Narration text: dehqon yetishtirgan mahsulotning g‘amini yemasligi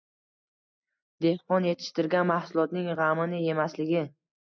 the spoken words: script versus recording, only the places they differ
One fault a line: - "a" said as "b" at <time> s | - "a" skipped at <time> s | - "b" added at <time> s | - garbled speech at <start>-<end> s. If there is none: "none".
none